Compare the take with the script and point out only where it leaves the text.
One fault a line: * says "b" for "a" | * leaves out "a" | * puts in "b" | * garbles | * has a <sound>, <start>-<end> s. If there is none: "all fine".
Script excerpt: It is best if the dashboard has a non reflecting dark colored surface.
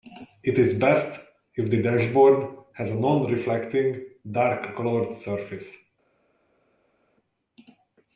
all fine